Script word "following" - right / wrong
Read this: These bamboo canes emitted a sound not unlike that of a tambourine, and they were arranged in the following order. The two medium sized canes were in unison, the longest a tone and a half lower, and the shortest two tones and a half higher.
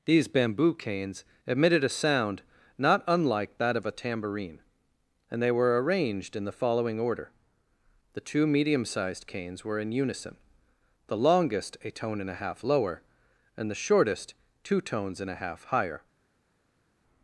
right